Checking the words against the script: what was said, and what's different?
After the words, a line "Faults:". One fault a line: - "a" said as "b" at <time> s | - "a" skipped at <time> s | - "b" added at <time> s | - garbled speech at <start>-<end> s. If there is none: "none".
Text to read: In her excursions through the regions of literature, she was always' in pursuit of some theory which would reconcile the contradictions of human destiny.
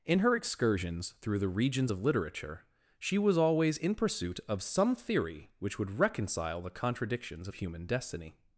In her excursions through the regions of literature, she was always' in pursuit of some theory which would reconcile the contradictions of human destiny.
Faults:
none